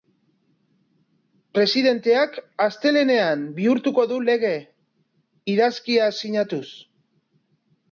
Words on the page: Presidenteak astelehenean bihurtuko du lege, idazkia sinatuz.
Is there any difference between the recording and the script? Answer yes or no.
no